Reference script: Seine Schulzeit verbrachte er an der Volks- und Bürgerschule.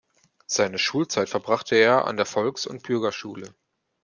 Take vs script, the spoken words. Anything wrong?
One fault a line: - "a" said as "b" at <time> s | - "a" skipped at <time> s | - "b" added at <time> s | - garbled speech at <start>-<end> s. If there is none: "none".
none